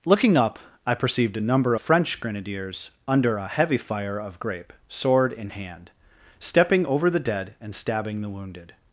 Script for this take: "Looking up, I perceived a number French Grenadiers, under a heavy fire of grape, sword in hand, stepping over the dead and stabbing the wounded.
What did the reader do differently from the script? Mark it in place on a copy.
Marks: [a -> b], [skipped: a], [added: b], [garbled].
"Looking up, I perceived a number French Grenadiers, under a heavy fire of grape, sword in hand, stepping over the dead and stabbing the wounded.